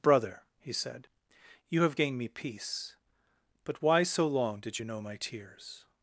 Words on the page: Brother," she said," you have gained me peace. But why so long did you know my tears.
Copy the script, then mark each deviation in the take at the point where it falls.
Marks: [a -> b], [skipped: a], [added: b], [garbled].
Brother," [she -> he] said," you have gained me peace. But why so long did you know my tears.